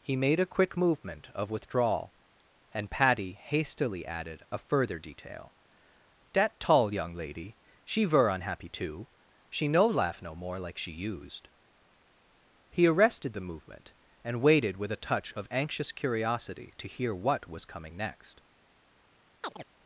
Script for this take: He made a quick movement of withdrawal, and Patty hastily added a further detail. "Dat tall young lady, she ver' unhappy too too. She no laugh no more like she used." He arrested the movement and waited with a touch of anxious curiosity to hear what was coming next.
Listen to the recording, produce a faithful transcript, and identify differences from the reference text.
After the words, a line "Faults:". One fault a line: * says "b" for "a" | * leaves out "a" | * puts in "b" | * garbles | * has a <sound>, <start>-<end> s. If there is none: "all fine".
He made a quick movement of withdrawal, and Patty hastily added a further detail. "Dat tall young lady, she ver' unhappy too. She no laugh no more like she used." He arrested the movement and waited with a touch of anxious curiosity to hear what was coming next.
Faults:
* leaves out "too"
* has a chirp, 19.4-19.7 s